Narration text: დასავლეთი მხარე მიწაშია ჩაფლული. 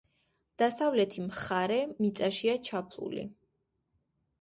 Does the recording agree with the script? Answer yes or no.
yes